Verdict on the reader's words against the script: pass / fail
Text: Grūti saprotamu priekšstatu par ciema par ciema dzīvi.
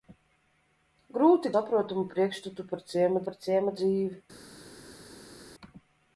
pass